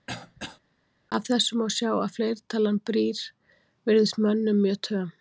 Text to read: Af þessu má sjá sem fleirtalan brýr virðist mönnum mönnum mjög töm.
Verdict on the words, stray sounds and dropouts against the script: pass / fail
fail